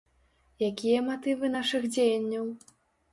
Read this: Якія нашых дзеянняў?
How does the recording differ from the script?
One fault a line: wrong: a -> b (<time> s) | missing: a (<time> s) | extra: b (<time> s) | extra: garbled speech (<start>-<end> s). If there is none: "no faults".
extra: матывы (1.1 s)